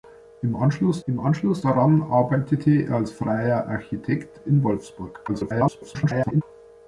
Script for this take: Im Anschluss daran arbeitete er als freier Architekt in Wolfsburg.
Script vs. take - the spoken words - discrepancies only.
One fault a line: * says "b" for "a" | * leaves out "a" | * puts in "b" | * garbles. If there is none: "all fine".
* puts in "im Anschluss"
* garbles